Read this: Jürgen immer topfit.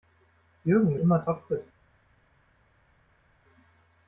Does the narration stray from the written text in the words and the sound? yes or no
no